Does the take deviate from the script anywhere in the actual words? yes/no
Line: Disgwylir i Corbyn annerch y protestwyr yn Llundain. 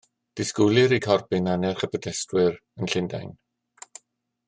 no